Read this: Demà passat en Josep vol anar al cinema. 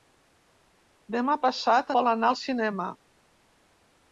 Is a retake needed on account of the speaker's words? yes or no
yes